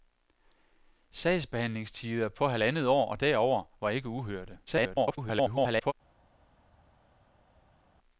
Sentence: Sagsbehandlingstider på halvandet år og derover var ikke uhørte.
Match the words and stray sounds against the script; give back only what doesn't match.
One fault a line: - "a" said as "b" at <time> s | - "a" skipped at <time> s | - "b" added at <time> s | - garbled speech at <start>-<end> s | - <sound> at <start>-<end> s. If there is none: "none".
- garbled speech at 4.7-5.9 s